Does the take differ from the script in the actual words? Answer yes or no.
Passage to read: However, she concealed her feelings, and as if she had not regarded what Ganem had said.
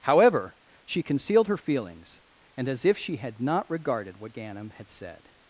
no